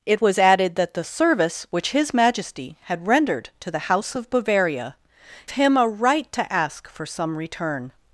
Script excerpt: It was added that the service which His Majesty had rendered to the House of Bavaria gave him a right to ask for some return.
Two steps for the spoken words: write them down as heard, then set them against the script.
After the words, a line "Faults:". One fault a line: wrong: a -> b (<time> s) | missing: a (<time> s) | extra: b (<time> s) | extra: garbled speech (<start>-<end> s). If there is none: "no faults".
It was added that the service which His Majesty had rendered to the House of Bavaria him a right to ask for some return.
Faults:
missing: gave (5.0 s)